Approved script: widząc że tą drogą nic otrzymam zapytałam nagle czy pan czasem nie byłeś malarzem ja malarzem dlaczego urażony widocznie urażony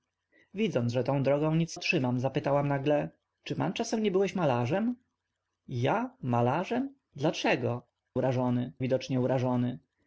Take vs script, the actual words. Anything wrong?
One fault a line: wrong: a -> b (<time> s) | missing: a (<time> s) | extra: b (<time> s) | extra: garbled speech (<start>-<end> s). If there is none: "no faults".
no faults